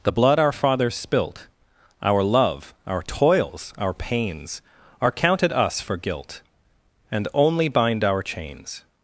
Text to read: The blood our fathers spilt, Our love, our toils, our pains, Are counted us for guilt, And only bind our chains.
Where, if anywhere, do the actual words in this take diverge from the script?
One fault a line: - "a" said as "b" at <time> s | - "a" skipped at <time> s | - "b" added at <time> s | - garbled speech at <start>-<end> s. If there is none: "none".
none